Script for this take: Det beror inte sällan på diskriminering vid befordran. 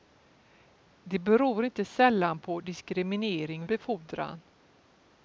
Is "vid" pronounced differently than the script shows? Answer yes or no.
yes